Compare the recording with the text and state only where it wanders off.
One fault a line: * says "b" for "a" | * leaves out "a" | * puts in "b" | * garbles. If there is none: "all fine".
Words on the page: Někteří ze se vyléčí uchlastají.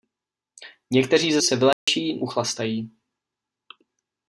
all fine